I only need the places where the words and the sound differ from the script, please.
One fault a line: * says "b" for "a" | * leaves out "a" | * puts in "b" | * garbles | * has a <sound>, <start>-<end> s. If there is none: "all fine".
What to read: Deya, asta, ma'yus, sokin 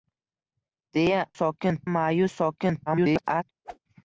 * says "sokin" for "asta"
* garbles
* has a whoosh, 3.6-3.8 s